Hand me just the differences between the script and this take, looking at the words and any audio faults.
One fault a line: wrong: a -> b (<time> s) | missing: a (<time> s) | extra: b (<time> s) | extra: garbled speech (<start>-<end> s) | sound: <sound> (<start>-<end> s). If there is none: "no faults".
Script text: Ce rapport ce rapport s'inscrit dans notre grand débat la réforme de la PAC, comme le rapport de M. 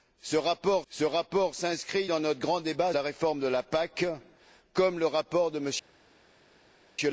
no faults